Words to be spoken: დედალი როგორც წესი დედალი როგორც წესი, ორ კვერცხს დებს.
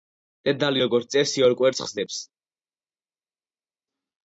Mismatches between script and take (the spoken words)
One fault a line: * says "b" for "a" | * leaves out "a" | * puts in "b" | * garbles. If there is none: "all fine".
* leaves out "დედალი როგორც წესი"